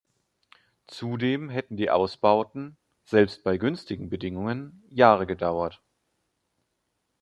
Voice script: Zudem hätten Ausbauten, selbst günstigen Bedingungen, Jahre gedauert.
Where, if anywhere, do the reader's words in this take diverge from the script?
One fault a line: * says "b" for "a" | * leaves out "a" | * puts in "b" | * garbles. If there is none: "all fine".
* puts in "die"
* puts in "bei"